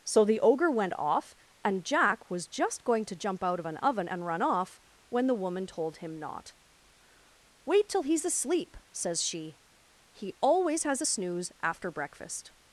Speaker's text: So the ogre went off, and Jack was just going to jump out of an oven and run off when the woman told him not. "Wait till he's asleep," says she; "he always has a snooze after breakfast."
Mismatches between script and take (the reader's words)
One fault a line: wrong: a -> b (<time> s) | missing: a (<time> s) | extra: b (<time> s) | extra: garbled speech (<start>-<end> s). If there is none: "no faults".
no faults